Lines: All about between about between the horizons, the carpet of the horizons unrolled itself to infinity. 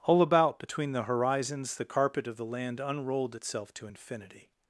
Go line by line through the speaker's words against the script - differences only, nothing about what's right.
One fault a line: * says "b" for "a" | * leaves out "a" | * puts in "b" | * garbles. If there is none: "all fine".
* leaves out "about between"
* says "land" for "horizons"